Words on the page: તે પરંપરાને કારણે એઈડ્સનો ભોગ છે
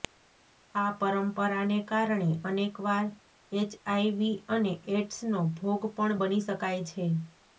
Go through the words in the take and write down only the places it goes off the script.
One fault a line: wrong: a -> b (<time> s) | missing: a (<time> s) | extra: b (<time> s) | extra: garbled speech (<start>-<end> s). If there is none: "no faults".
wrong: તે -> આ (0.8 s)
extra: અનેકવાર એચઆઈવી અને (2.5 s)
extra: પણ બની શકાય (6.0 s)